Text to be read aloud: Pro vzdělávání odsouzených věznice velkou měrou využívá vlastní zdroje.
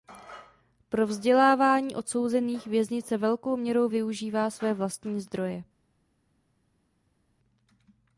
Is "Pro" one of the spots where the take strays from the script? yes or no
no